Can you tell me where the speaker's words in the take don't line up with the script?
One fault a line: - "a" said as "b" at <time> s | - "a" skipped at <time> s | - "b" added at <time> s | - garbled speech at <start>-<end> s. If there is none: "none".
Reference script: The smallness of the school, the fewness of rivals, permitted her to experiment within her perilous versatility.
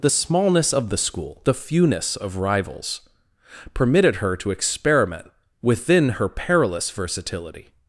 none